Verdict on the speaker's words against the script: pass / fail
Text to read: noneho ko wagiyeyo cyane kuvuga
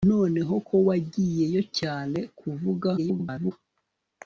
fail